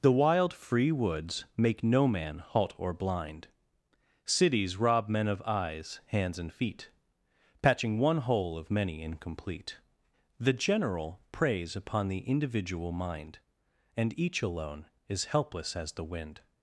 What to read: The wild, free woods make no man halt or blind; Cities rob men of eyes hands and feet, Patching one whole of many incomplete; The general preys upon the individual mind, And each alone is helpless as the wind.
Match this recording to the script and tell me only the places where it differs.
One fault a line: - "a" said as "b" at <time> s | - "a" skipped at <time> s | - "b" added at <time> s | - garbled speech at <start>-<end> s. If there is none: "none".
none